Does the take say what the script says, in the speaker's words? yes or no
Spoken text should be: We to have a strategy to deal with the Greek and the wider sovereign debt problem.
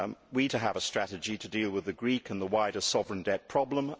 yes